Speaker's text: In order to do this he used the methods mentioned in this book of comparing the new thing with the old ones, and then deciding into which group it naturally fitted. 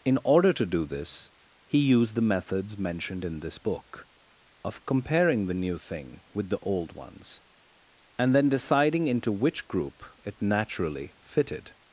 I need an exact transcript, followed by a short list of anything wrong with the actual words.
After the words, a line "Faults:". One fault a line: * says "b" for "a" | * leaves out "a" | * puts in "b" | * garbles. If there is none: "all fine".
In order to do this he used the methods mentioned in this book of comparing the new thing with the old ones, and then deciding into which group it naturally fitted.
Faults:
all fine